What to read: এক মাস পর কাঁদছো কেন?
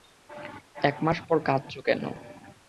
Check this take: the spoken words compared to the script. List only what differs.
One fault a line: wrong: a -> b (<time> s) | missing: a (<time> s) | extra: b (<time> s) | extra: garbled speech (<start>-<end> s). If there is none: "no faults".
no faults